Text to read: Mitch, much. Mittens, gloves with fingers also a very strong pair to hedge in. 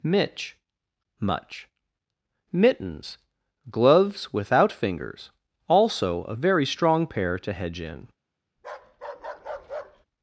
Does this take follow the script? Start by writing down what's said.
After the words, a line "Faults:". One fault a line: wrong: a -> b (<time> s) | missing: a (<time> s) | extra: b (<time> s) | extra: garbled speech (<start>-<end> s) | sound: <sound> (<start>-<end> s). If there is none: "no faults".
Mitch, much. Mittens, gloves without fingers also a very strong pair to hedge in.
Faults:
wrong: with -> without (4.3 s)
sound: bark (8.6-10.1 s)